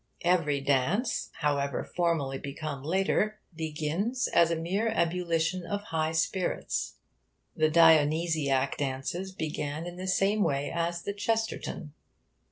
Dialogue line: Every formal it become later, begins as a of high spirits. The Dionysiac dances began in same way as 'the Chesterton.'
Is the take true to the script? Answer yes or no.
no